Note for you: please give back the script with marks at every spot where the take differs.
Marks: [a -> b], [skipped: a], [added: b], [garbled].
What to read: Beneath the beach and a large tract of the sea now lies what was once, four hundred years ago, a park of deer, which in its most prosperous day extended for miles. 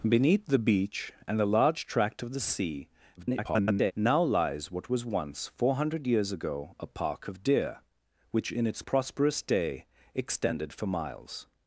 Beneath the beach and a large tract of the sea [garbled] now lies what was once, four hundred years ago, a park of deer, which in its [skipped: most] prosperous day extended for miles.